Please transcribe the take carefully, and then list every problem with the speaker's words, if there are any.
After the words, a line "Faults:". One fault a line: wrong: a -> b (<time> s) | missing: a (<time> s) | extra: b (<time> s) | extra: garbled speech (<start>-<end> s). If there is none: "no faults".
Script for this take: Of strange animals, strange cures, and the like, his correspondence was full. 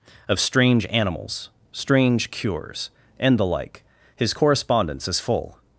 Of strange animals, strange cures, and the like, his correspondence is full.
Faults:
wrong: was -> is (5.1 s)